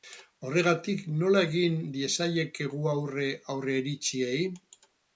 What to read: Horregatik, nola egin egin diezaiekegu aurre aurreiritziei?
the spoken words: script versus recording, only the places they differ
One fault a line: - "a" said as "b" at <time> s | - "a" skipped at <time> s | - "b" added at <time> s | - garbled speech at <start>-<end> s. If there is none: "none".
- "egin" skipped at 1.8 s